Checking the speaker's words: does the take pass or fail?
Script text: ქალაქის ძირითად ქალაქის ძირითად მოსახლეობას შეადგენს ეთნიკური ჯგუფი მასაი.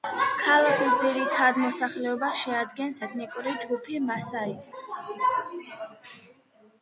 fail